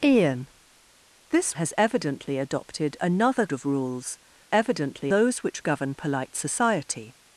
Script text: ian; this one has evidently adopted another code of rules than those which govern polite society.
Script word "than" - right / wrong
wrong